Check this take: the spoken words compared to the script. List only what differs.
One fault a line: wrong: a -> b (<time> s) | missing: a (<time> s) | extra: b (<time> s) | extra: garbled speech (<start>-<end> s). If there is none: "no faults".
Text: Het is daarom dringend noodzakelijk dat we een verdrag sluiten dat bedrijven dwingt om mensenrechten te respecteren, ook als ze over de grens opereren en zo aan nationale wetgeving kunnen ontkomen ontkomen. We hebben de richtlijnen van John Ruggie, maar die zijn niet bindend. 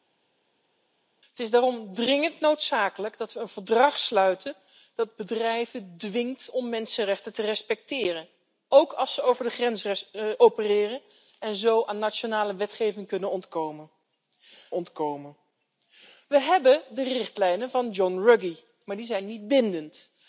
no faults